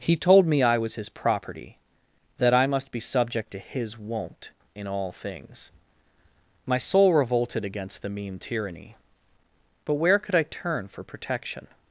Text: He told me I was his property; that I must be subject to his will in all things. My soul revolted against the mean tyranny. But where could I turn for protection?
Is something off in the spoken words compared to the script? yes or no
yes